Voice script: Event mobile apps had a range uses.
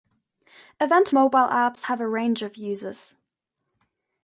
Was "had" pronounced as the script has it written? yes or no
no